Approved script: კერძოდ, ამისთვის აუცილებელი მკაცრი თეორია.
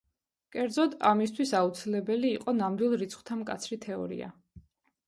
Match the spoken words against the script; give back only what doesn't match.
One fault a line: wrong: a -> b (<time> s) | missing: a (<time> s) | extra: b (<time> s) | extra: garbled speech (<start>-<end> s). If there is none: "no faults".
extra: იყო ნამდვილ რიცხვთა (2.4 s)